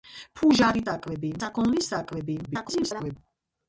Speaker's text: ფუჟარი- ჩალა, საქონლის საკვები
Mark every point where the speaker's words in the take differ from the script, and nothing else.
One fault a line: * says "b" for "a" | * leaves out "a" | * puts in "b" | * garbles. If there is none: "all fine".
* says "საკვები" for "ჩალა"
* garbles